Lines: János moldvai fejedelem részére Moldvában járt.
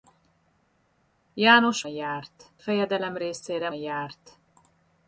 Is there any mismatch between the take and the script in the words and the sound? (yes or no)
yes